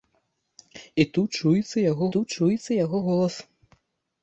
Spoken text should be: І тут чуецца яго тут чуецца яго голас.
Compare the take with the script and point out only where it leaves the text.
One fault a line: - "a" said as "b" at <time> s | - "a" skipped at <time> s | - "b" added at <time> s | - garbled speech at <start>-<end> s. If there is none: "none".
none